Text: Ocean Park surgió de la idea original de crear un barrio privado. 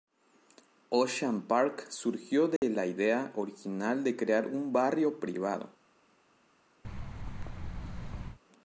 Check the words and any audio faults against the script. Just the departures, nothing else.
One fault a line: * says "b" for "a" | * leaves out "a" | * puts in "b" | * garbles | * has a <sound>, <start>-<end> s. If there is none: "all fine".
* has a dropout, 2.6-2.6 s
* has a thud, 6.8-8.4 s